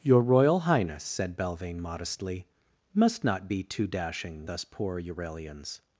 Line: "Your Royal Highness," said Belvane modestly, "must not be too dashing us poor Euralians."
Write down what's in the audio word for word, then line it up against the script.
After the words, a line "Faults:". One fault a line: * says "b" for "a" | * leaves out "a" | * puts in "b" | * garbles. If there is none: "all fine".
"Your Royal Highness," said Belvane modestly, "must not be too dashing us poor Euralians."
Faults:
all fine